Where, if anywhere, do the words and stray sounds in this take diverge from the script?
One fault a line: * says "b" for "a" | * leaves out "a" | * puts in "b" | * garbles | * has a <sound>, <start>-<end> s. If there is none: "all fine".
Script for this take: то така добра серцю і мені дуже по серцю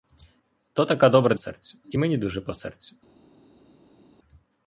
all fine